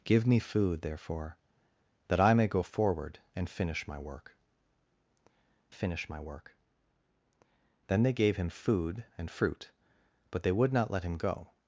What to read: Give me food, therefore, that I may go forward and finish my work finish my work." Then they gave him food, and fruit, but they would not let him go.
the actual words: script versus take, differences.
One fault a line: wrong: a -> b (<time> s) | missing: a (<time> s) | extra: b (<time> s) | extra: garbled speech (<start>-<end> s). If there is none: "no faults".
no faults